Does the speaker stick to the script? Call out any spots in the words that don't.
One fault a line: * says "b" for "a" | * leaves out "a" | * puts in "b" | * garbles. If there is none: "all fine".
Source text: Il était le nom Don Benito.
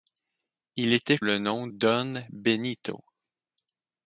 all fine